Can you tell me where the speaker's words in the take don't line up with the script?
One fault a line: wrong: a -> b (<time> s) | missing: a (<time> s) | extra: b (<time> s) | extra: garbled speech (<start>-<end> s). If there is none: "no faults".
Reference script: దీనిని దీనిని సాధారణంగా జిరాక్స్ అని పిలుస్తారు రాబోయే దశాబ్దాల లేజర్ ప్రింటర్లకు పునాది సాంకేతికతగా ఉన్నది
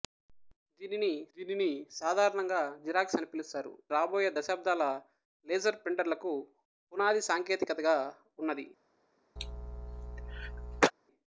no faults